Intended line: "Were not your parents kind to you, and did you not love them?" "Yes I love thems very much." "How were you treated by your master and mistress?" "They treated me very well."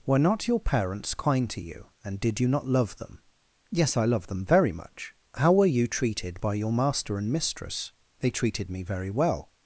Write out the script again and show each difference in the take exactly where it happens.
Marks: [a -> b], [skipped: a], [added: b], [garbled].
"Were not your parents kind to you, and did you not love them?" "Yes I love [thems -> them] very much." "How were you treated by your master and mistress?" "They treated me very well."